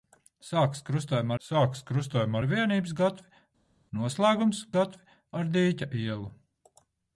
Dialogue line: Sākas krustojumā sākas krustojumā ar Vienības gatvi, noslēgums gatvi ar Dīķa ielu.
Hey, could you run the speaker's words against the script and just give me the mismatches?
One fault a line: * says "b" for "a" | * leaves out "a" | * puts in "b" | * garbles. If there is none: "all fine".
all fine